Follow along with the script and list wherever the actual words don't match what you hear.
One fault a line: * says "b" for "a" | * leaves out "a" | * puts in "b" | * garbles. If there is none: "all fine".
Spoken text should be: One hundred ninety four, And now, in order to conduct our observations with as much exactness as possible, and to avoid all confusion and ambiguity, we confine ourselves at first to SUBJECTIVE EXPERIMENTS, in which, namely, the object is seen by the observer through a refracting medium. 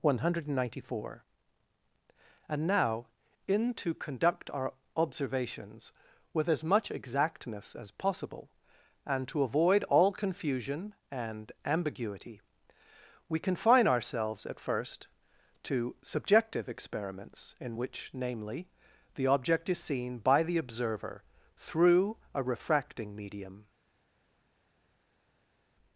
* leaves out "order"